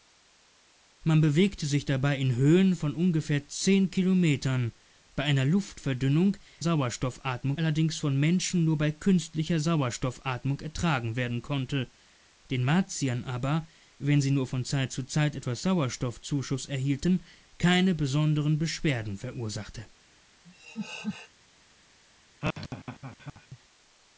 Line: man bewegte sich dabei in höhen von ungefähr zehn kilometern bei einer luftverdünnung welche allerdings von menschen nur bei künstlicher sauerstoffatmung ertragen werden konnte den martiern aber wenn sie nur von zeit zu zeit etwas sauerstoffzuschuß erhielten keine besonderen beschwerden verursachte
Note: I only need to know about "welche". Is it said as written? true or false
false